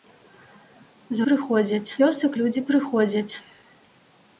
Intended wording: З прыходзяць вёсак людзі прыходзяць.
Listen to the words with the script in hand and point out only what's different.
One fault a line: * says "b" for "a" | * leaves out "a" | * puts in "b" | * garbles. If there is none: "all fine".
all fine